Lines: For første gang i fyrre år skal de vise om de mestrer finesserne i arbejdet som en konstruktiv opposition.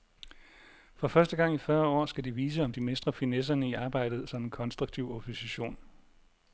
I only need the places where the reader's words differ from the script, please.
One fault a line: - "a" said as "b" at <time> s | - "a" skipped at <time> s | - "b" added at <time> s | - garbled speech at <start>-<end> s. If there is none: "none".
none